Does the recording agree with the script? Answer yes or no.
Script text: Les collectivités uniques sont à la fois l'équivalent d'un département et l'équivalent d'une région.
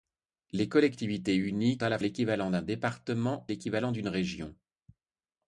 no